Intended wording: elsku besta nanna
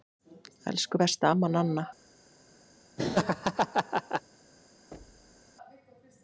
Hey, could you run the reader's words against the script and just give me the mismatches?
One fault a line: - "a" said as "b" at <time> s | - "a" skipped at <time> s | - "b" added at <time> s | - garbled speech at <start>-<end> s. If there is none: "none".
- "amma" added at 1.3 s